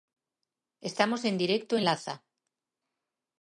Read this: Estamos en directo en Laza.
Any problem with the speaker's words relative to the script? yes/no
no